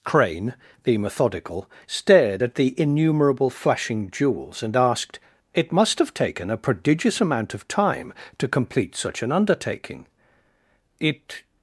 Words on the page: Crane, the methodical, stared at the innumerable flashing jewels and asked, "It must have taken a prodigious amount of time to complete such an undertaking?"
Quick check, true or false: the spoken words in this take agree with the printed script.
false